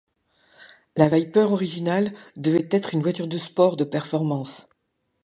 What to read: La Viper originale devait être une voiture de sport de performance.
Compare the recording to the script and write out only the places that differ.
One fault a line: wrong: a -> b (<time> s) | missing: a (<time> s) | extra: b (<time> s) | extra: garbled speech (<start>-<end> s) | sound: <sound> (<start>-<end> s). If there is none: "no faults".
no faults